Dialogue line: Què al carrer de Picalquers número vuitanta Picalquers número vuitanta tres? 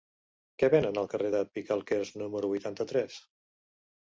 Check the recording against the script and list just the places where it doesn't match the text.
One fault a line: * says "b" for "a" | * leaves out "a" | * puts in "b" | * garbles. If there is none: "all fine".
* puts in "venen"
* leaves out "Picalquers número vuitanta"